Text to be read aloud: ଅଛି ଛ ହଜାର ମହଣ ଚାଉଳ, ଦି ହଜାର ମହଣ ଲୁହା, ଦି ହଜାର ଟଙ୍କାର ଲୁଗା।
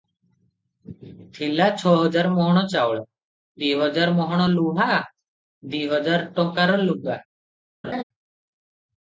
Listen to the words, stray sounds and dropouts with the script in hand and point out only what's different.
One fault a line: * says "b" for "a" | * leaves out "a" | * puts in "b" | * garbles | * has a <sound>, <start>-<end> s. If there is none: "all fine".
* says "ଥିଲା" for "ଅଛି"
* has a laugh, 7.8-8.0 s